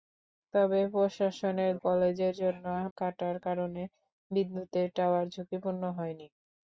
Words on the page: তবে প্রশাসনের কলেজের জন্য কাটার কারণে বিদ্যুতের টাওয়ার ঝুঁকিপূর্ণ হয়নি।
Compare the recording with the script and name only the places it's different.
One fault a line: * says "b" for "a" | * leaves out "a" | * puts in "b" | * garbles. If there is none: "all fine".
all fine